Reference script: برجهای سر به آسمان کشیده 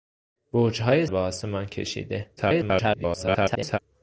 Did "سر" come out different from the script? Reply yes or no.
yes